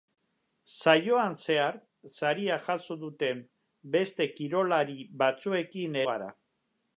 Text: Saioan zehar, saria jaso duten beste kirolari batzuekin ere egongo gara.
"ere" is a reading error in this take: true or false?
true